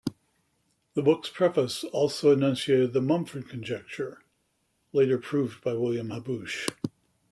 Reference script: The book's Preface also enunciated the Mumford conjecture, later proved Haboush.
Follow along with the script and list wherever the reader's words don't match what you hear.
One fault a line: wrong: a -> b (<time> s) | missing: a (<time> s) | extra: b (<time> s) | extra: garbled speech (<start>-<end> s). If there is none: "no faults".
extra: by William (5.6 s)